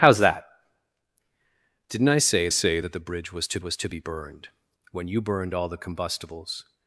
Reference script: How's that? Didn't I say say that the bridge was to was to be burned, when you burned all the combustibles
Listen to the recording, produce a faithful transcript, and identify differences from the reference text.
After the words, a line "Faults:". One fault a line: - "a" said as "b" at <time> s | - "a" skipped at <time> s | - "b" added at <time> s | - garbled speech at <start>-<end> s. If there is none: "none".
How's that? Didn't I say say that the bridge was to was to be burned, when you burned all the combustibles
Faults:
none